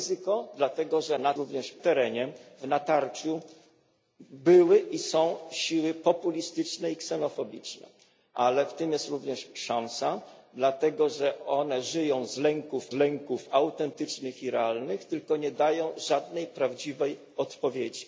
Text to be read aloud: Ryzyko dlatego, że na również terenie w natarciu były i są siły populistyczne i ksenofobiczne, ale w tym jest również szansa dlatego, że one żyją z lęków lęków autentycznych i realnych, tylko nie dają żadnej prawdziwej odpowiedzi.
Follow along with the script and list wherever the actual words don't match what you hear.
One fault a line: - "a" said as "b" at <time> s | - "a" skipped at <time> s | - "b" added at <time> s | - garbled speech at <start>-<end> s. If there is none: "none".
none